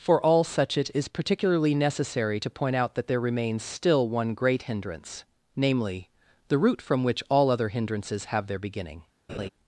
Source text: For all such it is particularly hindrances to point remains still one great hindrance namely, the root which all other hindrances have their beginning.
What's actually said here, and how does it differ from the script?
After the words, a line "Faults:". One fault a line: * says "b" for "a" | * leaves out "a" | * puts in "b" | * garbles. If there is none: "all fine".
For all such it is particularly necessary to point out that there remains still one great hindrance namely, the root from which all other hindrances have their beginning.
Faults:
* says "necessary" for "hindrances"
* puts in "out that there"
* puts in "from"